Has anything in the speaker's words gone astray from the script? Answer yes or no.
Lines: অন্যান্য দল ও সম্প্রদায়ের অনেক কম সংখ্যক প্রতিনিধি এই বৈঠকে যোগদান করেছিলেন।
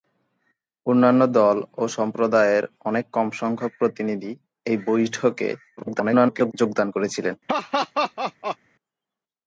yes